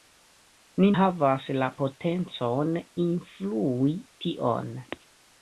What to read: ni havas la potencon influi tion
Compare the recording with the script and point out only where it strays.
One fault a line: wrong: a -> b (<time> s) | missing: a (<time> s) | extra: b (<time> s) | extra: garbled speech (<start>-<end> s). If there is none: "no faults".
no faults